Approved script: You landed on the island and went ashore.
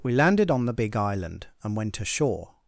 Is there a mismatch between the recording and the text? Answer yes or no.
yes